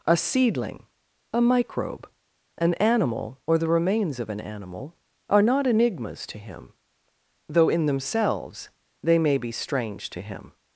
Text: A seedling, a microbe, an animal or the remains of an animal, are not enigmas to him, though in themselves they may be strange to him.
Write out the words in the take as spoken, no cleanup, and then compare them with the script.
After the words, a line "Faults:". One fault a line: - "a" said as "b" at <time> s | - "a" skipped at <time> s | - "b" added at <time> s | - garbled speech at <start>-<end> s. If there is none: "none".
A seedling, a microbe, an animal or the remains of an animal, are not enigmas to him, though in themselves they may be strange to him.
Faults:
none